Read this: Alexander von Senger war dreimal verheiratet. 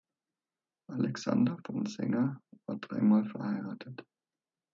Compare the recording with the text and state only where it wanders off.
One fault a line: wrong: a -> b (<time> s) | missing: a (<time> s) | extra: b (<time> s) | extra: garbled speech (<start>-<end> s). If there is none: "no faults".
no faults